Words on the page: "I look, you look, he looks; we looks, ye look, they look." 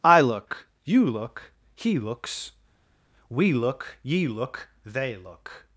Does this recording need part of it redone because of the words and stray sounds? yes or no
yes